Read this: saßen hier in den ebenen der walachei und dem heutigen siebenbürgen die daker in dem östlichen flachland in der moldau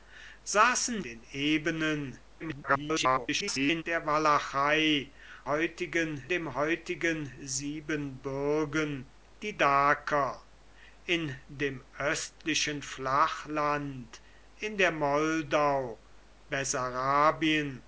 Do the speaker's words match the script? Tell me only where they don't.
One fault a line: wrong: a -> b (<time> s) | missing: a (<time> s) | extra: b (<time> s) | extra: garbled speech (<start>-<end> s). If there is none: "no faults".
missing: hier in (1.0 s)
extra: garbled speech (2.4-3.8 s)
wrong: und -> heutigen (5.4 s)